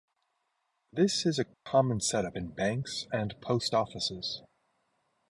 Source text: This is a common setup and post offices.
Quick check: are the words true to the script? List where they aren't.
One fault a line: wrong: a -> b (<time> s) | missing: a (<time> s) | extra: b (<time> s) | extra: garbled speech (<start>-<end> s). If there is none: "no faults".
extra: in banks (2.3 s)